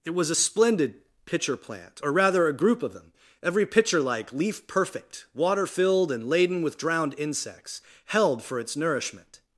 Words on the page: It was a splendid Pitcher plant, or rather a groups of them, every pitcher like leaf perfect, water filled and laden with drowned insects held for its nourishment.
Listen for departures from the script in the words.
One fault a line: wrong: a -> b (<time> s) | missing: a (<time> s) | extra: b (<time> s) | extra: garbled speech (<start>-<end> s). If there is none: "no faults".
wrong: groups -> group (2.5 s)